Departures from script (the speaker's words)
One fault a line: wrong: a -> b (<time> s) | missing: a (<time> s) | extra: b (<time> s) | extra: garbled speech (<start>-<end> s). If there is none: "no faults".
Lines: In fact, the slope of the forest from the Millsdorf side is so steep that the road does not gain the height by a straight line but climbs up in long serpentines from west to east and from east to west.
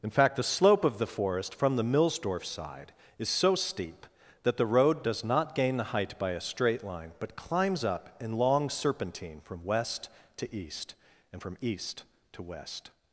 wrong: serpentines -> serpentine (8.7 s)